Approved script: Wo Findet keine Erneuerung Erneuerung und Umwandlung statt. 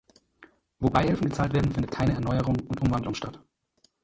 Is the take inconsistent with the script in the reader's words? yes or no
yes